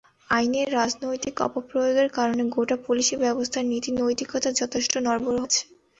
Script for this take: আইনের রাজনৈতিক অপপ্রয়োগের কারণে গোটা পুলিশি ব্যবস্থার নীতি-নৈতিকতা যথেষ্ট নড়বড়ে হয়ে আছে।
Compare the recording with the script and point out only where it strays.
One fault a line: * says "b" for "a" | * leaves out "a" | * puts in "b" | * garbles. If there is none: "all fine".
* leaves out "হয়ে"